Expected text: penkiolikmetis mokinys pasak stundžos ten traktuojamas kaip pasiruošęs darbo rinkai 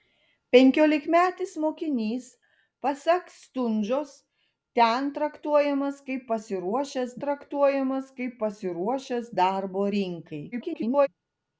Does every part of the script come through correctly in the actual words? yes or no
no